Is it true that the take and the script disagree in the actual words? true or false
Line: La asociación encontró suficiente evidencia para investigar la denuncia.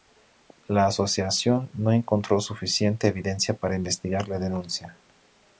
true